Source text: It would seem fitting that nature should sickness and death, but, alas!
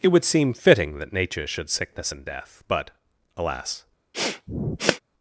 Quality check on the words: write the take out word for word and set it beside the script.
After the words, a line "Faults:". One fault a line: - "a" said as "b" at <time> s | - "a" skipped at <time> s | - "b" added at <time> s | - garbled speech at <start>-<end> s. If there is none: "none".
It would seem fitting that nature should sickness and death, but, alas!
Faults:
none